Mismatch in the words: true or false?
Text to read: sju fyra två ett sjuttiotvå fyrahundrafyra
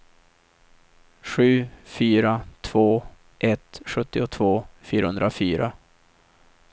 false